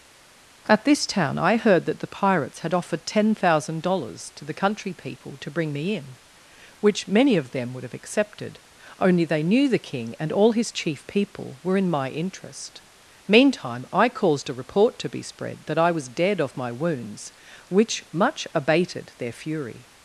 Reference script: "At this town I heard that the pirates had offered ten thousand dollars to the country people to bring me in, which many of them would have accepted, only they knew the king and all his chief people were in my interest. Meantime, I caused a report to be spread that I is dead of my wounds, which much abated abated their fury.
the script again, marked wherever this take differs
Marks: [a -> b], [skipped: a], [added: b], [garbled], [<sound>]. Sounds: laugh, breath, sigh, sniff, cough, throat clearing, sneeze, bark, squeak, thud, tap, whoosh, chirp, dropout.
"At this town I heard that the pirates had offered ten thousand dollars to the country people to bring me in, which many of them would have accepted, only they knew the king and all his chief people were in my interest. Meantime, I caused a report to be spread that I [is -> was] dead of my wounds, which much abated [skipped: abated] their fury.